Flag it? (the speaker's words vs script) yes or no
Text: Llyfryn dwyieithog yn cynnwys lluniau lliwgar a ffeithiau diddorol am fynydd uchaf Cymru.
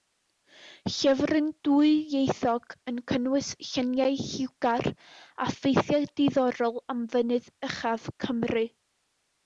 no